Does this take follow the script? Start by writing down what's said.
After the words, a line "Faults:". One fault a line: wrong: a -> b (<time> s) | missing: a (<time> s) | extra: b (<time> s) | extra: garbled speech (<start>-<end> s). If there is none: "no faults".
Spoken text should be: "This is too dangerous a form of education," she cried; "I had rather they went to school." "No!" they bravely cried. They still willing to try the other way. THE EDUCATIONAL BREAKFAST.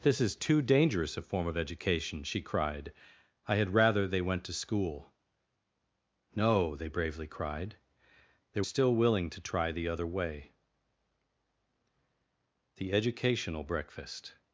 "This is too dangerous a form of education," she cried; "I had rather they went to school." "No!" they bravely cried. They still willing to try the other way. THE EDUCATIONAL BREAKFAST.
Faults:
no faults